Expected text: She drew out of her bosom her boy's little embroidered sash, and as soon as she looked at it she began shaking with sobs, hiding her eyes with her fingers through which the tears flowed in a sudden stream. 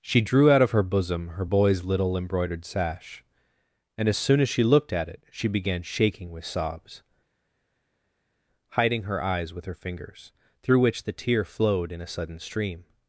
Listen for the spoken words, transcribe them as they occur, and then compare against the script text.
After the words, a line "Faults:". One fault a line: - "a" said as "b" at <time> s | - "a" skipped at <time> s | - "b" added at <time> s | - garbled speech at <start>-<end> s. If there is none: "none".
She drew out of her bosom her boy's little embroidered sash, and as soon as she looked at it she began shaking with sobs, hiding her eyes with her fingers through which the tear flowed in a sudden stream.
Faults:
- "tears" said as "tear" at 11.1 s